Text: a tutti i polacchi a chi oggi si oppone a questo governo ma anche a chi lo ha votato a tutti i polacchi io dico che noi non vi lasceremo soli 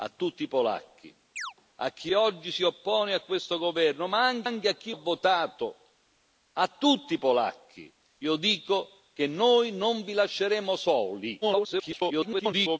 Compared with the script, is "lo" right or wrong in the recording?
wrong